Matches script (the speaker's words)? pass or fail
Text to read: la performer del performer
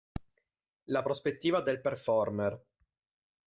fail